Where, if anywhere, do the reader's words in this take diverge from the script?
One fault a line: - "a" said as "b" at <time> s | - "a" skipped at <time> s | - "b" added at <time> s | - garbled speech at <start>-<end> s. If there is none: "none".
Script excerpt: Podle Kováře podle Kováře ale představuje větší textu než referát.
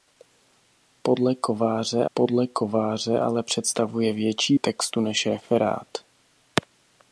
none